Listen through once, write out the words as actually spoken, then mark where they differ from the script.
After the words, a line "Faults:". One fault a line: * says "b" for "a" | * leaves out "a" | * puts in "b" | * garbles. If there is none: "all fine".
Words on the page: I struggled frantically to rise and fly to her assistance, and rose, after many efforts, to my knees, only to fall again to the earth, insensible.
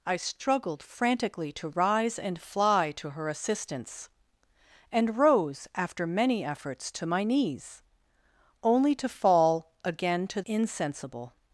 I struggled frantically to rise and fly to her assistance, and rose, after many efforts, to my knees, only to fall again to insensible.
Faults:
* leaves out "the earth"